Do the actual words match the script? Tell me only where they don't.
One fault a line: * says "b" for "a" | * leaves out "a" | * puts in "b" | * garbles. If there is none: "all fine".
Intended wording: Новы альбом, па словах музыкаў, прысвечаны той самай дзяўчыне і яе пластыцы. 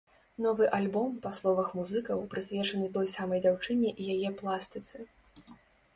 all fine